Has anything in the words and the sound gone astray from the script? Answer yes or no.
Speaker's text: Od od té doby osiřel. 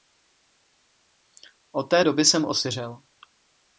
yes